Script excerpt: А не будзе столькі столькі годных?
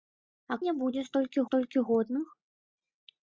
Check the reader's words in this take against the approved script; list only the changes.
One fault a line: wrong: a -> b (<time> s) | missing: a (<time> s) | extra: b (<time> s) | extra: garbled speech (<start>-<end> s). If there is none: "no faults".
no faults